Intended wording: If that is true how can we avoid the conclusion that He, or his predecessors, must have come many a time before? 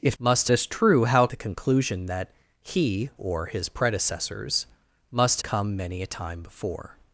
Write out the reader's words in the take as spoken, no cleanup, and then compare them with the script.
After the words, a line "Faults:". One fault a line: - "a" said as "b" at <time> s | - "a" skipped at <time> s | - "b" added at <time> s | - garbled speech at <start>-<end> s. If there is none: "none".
If must is true how the conclusion that He, or his predecessors, must come many a time before?
Faults:
- "that" said as "must" at 0.2 s
- "can we avoid" skipped at 1.3 s
- "have" skipped at 5.4 s